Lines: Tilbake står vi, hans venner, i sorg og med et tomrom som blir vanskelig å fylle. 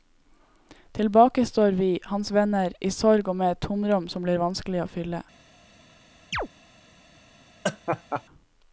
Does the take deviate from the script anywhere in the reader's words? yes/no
no